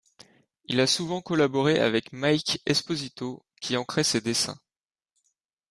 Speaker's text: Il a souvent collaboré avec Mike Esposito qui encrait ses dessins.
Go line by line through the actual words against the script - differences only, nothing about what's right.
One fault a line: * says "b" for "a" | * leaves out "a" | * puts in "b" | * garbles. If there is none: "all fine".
all fine